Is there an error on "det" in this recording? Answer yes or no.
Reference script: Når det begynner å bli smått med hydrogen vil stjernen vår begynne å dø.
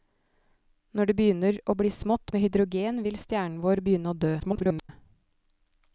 no